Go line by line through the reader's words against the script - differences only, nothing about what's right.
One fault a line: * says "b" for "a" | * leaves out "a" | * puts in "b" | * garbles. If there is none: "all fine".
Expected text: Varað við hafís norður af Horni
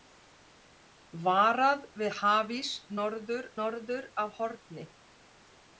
* puts in "norður"